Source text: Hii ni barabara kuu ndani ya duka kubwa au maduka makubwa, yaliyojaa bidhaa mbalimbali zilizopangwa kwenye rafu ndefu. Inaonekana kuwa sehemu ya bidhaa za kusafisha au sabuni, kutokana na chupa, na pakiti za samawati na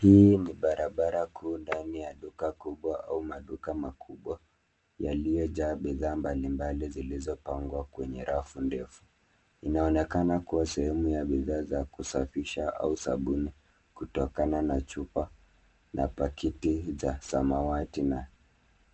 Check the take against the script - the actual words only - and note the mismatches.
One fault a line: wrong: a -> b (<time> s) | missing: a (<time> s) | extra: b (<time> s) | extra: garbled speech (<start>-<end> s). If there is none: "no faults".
no faults